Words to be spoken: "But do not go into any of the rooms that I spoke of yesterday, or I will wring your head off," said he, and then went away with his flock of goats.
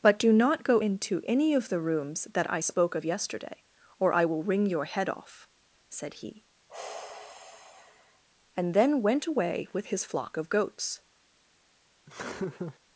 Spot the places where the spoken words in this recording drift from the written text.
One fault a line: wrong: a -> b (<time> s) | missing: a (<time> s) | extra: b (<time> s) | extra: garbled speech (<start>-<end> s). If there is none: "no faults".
no faults